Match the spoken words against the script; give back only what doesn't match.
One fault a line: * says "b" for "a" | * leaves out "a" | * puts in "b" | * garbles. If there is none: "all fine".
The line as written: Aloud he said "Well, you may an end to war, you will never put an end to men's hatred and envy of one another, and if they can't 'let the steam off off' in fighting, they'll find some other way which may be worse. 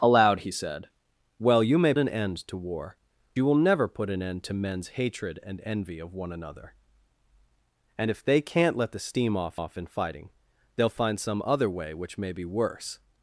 all fine